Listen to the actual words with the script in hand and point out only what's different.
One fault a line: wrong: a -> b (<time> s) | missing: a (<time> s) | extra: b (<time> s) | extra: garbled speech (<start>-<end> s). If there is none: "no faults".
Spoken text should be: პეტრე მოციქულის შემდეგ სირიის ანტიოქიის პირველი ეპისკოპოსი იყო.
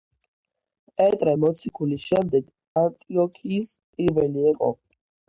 missing: სირიის (2.5 s)
missing: ეპისკოპოსი (4.5 s)